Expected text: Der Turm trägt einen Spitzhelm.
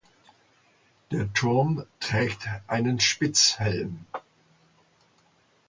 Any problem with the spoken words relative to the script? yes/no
no